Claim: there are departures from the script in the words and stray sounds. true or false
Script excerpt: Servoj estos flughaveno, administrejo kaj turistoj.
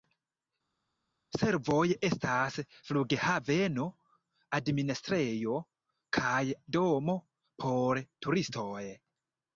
true